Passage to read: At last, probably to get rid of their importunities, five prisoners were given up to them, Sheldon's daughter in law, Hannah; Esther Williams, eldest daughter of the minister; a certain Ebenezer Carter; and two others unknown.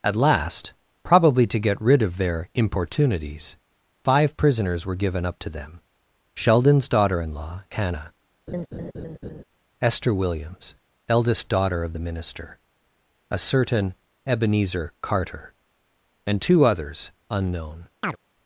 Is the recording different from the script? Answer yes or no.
no